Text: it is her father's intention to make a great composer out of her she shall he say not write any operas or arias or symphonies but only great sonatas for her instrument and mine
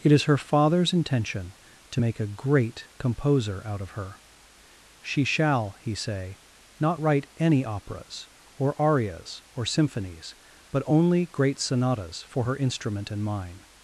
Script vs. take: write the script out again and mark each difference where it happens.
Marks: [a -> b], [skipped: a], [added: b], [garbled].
it is her father's intention to make a great composer out of her she shall he say not write any operas or arias or symphonies but only great sonatas for her instrument and mine